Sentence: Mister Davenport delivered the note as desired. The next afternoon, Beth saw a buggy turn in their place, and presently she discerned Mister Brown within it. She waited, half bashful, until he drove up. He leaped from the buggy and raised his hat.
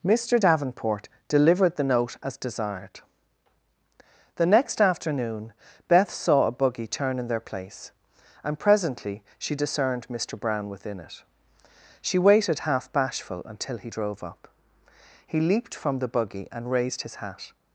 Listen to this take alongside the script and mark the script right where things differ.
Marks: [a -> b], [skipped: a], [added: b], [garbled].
Mister Davenport delivered the note as desired. The next afternoon, Beth saw a buggy turn in their place, and presently she discerned Mister Brown within it. She waited, half bashful, until he drove up. He leaped from the buggy and raised his hat.